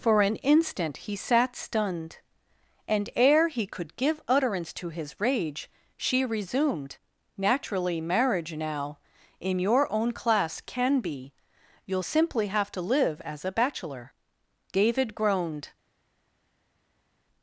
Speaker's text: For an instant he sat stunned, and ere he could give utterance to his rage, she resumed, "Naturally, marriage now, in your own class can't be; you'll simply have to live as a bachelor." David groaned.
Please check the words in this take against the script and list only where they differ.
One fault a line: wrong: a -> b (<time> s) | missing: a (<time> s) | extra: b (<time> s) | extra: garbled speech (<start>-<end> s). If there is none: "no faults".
wrong: can't -> can (10.6 s)